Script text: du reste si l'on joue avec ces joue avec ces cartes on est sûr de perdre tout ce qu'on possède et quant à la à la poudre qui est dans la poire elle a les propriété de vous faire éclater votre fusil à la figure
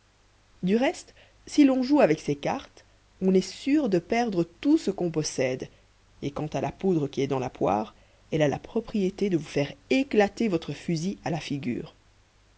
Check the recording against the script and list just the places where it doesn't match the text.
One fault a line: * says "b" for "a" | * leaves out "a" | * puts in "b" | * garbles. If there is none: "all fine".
* leaves out "joue avec ces"
* leaves out "à la"
* says "la" for "les"